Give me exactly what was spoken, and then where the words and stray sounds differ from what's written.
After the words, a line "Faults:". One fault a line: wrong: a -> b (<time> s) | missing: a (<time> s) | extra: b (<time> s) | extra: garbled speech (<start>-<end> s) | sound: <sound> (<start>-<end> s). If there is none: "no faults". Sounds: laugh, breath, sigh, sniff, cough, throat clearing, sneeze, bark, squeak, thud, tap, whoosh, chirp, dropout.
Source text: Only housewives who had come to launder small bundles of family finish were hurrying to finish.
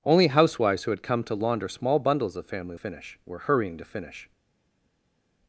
Only housewives who had come to launder small bundles of family finish were hurrying to finish.
Faults:
no faults